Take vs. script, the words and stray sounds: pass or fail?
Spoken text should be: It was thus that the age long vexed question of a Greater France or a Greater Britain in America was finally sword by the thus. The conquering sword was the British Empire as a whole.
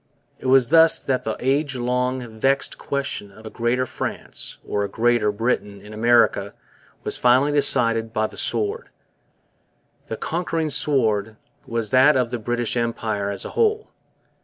fail